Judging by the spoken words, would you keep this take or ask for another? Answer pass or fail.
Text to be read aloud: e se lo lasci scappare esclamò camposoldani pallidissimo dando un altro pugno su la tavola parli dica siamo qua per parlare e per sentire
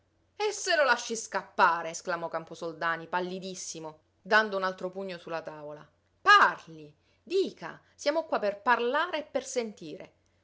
pass